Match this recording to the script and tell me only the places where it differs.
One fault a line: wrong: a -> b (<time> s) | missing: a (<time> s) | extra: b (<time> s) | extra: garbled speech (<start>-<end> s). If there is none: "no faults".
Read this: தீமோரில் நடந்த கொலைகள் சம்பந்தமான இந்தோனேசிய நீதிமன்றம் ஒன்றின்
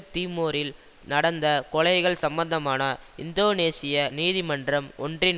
no faults